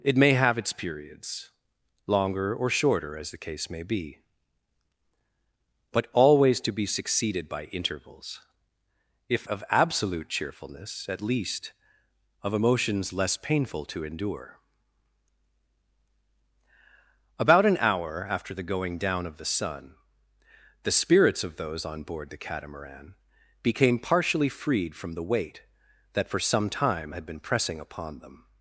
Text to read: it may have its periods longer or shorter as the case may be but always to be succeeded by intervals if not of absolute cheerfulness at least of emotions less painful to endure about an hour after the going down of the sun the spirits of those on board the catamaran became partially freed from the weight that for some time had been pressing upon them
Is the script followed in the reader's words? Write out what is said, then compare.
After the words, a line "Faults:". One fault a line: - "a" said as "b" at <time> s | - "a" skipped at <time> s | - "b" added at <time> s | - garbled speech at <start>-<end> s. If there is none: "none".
it may have its periods longer or shorter as the case may be but always to be succeeded by intervals if of absolute cheerfulness at least of emotions less painful to endure about an hour after the going down of the sun the spirits of those on board the catamaran became partially freed from the weight that for some time had been pressing upon them
Faults:
- "not" skipped at 9.5 s